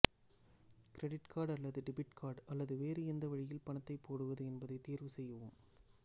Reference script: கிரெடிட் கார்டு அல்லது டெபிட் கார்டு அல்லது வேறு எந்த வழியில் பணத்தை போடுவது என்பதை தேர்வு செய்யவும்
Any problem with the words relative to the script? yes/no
no